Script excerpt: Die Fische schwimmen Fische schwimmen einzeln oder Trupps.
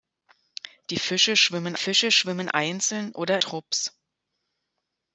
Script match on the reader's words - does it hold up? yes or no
yes